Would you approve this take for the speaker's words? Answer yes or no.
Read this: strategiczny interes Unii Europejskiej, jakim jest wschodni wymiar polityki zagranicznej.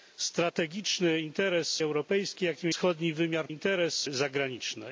no